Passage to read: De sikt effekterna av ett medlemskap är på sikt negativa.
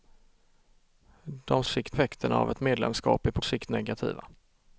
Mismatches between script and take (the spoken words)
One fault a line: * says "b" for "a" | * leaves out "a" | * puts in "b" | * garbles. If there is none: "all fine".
all fine